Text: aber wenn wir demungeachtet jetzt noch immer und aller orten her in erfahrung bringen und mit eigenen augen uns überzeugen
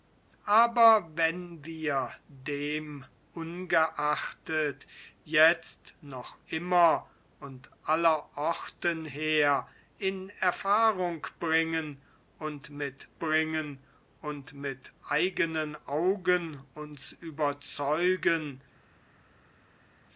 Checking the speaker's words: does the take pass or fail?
fail